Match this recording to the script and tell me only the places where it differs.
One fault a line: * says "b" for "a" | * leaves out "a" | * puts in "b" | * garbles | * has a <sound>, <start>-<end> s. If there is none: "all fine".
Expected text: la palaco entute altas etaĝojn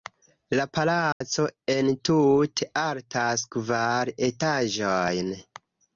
* has a dropout, 1.1-1.2 s
* puts in "kvar"